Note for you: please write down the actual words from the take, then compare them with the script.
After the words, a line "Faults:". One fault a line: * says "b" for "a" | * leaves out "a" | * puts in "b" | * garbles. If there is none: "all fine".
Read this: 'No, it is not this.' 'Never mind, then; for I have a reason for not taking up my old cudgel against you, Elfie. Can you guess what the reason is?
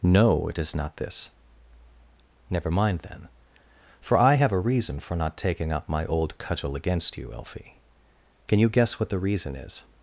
'No, it is not this.' 'Never mind, then; for I have a reason for not taking up my old cudgel against you, Elfie. Can you guess what the reason is?
Faults:
all fine